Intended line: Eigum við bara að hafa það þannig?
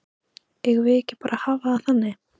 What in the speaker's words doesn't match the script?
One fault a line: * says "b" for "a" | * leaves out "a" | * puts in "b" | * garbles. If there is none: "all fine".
* puts in "ekki"